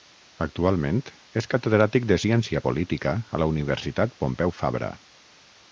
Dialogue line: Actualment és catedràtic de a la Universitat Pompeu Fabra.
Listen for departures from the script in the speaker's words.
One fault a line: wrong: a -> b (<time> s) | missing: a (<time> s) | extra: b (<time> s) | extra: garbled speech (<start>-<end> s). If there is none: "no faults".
extra: ciència política (2.2 s)